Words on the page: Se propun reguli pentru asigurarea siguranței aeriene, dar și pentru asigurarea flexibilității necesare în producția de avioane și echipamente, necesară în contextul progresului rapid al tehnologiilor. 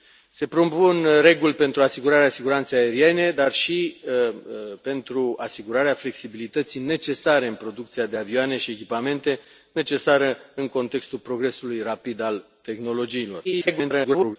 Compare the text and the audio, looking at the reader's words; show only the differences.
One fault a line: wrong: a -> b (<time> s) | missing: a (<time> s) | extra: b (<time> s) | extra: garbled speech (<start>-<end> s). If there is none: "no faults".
extra: garbled speech (13.4-14.4 s)